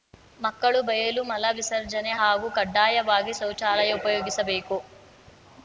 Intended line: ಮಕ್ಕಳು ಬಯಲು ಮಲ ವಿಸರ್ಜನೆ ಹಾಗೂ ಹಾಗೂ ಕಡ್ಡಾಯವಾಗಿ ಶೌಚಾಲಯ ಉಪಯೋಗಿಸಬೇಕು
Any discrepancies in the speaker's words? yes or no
yes